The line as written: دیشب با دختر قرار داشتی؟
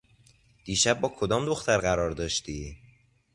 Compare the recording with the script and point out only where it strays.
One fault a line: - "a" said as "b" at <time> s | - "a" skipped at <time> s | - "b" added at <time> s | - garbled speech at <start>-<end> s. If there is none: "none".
- "کدام" added at 1.1 s